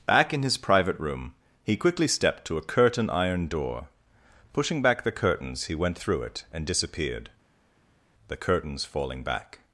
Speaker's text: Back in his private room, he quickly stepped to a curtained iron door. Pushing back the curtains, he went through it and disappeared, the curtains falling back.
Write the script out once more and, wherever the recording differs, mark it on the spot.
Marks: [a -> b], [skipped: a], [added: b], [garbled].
Back in his private room, he quickly stepped to a [curtained -> curtain] iron door. Pushing back the curtains, he went through it and disappeared, the curtains falling back.